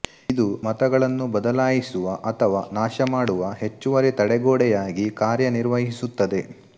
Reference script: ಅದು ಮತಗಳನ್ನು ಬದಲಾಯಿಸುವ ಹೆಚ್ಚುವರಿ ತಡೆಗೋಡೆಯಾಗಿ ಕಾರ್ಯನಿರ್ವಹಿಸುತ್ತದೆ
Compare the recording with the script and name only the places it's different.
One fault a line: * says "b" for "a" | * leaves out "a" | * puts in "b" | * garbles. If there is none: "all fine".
* says "ಇದು" for "ಅದು"
* puts in "ಅಥವಾ ನಾಶಮಾಡುವ"